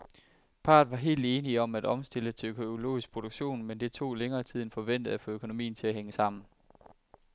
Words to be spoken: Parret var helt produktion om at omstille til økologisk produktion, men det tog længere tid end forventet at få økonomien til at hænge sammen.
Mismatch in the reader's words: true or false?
true